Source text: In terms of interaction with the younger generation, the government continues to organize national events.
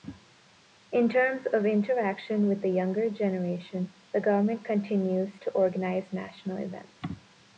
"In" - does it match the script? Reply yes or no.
yes